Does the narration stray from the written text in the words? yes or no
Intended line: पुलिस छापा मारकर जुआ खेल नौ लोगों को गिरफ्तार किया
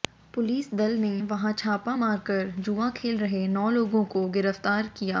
yes